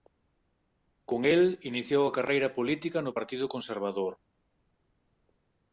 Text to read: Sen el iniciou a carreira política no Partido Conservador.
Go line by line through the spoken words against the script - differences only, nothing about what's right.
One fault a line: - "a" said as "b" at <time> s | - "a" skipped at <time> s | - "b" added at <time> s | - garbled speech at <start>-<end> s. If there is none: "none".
- "Sen" said as "Con" at 1.1 s